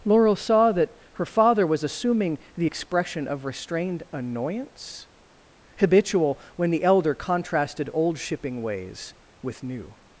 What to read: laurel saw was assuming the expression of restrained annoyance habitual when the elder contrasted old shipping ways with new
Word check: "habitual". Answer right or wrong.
right